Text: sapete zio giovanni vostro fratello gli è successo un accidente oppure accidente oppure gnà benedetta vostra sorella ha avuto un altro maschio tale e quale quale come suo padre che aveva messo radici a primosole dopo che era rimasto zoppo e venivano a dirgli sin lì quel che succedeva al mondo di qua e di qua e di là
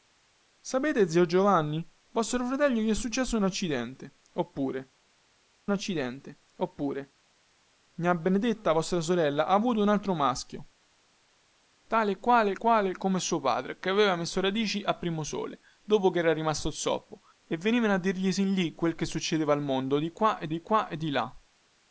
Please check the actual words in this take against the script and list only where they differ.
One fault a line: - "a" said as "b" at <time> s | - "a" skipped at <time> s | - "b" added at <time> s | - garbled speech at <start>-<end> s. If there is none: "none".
none